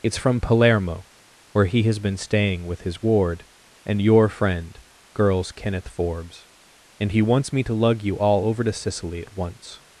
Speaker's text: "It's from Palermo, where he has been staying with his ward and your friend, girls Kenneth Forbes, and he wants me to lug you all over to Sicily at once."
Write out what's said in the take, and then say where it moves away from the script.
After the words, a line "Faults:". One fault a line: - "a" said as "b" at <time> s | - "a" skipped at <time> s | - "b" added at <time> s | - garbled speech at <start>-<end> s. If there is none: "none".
"It's from Palermo, where he has been staying with his ward and your friend, girls Kenneth Forbes, and he wants me to lug you all over to Sicily at once."
Faults:
none